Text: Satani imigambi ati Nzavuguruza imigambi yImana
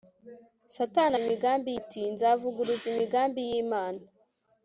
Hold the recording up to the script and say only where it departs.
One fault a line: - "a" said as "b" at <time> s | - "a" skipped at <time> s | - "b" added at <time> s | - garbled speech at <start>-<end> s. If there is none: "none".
none